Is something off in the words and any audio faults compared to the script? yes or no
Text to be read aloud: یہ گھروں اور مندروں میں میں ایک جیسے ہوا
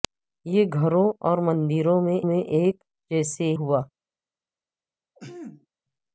yes